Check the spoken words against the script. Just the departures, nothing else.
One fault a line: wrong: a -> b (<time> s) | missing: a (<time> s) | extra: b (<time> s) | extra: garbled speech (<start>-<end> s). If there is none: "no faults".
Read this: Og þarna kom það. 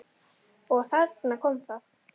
no faults